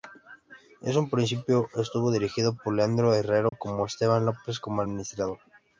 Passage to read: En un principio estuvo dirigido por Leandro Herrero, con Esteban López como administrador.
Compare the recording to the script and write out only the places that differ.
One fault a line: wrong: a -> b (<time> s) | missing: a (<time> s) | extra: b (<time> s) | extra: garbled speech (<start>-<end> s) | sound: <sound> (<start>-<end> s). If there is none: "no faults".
sound: dropout (3.5-3.5 s)